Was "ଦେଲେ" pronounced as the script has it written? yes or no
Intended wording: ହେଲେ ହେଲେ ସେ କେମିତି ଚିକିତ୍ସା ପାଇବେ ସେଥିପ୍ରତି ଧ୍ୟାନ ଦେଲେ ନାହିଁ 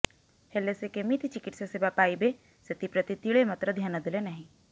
yes